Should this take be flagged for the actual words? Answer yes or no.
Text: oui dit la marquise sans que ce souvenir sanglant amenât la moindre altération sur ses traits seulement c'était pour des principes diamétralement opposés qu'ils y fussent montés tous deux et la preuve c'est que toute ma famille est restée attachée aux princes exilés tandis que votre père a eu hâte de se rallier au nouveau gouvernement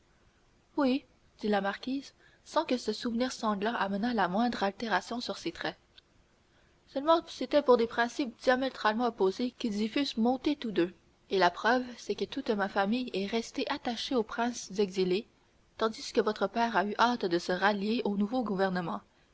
no